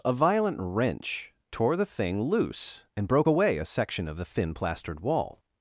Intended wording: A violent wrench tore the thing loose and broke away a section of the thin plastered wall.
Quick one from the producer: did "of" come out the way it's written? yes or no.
yes